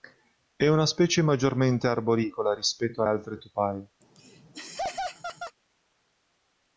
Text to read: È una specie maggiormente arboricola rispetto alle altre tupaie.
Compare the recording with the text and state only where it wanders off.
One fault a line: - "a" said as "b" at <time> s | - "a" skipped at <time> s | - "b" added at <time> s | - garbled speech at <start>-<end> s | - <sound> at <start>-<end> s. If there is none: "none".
- "alle" skipped at 3.0 s
- laugh at 4.0-5.6 s